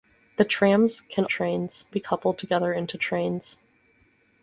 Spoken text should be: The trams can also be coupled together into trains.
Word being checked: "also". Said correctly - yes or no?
no